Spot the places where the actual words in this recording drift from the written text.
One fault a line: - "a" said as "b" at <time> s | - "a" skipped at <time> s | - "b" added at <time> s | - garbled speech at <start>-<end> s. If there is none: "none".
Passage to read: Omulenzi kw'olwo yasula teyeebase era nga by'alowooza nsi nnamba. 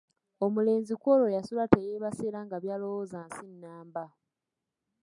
none